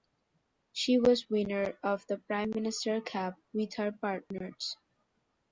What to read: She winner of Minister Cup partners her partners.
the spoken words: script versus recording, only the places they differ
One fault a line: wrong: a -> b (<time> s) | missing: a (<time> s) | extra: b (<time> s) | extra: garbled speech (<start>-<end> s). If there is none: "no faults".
extra: was (1.0 s)
extra: the Prime (2.1 s)
wrong: partners -> with (3.5 s)